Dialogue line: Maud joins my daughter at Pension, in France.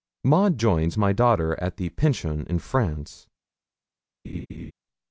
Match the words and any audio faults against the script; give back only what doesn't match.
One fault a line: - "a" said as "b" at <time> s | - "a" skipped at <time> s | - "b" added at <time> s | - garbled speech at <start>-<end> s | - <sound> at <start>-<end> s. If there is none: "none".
- "the" added at 1.8 s
- laugh at 4.2-4.7 s